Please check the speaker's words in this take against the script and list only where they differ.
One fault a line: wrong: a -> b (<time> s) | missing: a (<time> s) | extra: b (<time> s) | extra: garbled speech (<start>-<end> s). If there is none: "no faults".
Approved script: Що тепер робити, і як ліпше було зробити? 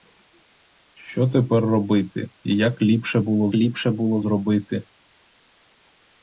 extra: ліпше було (3.5 s)